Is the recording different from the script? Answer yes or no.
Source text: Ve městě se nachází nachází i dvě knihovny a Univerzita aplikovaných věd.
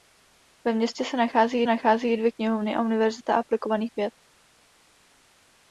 no